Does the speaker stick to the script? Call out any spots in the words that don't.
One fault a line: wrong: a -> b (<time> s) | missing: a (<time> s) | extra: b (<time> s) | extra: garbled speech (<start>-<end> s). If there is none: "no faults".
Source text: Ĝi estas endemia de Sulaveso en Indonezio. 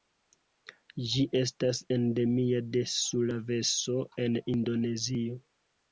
no faults